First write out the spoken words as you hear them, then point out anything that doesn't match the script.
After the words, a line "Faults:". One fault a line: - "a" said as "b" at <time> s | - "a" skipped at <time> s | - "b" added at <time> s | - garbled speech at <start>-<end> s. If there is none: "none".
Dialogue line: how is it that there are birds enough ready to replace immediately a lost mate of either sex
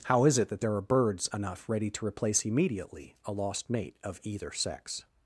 how is it that there are birds enough ready to replace immediately a lost mate of either sex
Faults:
none